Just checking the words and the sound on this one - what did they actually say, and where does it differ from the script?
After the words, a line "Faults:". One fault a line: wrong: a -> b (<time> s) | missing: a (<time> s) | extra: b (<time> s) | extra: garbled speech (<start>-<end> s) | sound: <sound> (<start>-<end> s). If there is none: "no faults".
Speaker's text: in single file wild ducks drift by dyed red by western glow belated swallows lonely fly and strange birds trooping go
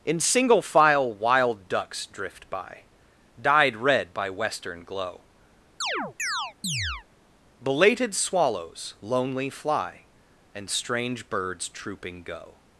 in single file wild ducks drift by dyed red by western glow belated swallows lonely fly and strange birds trooping go
Faults:
sound: chirp (5.8-7.1 s)